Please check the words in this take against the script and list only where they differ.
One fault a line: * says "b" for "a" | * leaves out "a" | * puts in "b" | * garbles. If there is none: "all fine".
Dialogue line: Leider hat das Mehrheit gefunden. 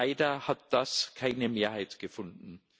* puts in "keine"